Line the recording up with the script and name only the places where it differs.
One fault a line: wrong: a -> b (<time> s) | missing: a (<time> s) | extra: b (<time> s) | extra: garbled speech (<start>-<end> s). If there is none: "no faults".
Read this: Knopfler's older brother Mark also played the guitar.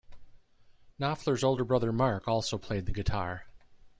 no faults